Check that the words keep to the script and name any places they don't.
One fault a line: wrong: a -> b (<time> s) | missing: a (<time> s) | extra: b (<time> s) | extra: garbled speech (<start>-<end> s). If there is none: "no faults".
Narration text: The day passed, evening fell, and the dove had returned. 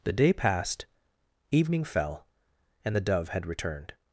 no faults